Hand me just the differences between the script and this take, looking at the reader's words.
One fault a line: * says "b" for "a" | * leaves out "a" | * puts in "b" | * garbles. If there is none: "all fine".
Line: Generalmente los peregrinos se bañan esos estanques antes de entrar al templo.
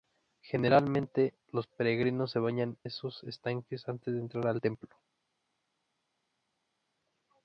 all fine